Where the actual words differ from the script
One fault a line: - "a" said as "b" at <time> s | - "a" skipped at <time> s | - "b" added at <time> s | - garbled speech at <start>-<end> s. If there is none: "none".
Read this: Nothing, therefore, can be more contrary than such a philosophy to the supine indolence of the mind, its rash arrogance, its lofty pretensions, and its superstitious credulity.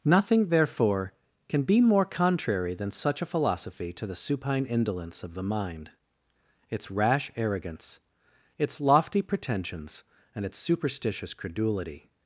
none